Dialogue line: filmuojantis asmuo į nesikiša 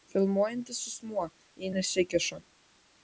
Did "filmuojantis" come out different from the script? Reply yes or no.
no